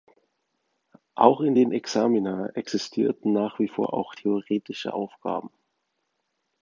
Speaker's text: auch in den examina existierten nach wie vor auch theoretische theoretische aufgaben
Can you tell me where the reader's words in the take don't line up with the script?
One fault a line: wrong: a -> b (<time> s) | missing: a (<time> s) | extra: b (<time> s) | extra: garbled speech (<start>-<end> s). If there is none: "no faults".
missing: theoretische (4.9 s)